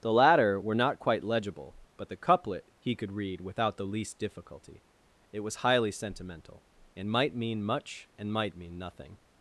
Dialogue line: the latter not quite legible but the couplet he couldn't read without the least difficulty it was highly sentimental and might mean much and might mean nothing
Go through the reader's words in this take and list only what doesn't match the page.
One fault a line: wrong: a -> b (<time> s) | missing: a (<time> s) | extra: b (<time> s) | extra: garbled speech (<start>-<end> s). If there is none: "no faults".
extra: were (0.6 s)
wrong: couldn't -> could (2.9 s)